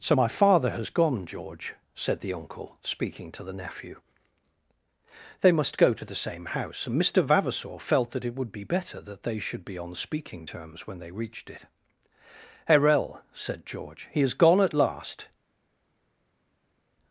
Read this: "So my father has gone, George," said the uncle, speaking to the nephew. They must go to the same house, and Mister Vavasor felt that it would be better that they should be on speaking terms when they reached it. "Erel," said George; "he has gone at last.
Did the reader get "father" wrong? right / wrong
right